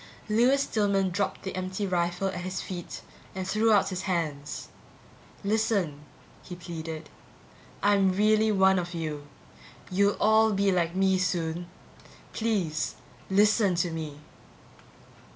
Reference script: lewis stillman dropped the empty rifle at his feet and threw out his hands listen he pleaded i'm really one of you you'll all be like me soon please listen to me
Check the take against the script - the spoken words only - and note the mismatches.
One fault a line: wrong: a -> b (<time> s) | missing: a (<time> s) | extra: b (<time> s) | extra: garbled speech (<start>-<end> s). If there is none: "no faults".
no faults